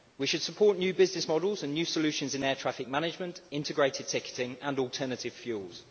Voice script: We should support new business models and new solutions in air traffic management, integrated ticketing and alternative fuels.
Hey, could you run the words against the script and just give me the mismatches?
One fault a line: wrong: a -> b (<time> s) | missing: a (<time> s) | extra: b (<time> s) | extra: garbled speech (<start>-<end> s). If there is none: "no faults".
no faults